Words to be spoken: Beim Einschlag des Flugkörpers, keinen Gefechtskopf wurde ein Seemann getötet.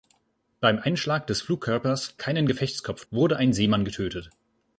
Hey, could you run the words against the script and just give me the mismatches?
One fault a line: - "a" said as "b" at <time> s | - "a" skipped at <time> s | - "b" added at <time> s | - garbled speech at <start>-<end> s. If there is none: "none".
none